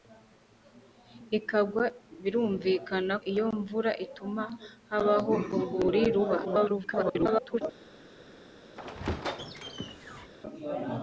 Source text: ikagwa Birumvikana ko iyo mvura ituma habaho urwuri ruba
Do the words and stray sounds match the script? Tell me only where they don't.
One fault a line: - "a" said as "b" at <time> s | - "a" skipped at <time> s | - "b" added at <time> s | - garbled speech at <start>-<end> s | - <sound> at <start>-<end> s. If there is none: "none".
- "ko" skipped at 3.1 s
- garbled speech at 6.4-7.6 s
- squeak at 8.8-10.3 s